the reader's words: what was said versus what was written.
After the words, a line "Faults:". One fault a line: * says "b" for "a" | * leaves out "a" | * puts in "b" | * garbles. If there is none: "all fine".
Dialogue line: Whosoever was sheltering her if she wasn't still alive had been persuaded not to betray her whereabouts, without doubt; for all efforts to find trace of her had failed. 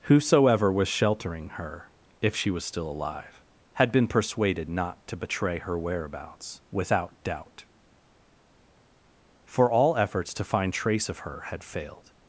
Whosoever was sheltering her if she was still alive had been persuaded not to betray her whereabouts, without doubt; for all efforts to find trace of her had failed.
Faults:
* says "was" for "wasn't"